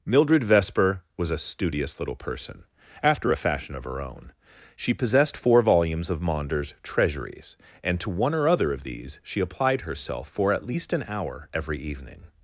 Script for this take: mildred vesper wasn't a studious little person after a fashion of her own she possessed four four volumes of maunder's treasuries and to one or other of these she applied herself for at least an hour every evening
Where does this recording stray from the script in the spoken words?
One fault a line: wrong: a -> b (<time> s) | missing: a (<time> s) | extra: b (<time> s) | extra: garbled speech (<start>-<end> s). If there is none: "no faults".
wrong: wasn't -> was (1.1 s)
missing: four (5.6 s)